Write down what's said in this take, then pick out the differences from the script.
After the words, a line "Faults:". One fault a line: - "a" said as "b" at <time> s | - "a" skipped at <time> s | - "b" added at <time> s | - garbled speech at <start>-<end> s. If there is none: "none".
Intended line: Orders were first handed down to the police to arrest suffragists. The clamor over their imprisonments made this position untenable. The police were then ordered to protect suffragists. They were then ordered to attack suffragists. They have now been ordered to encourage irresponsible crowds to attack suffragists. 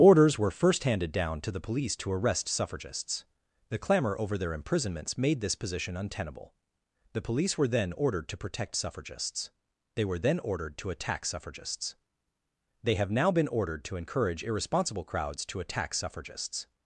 Orders were first handed down to the police to arrest suffragists. The clamor over their imprisonments made this position untenable. The police were then ordered to protect suffragists. They were then ordered to attack suffragists. They have now been ordered to encourage irresponsible crowds to attack suffragists.
Faults:
none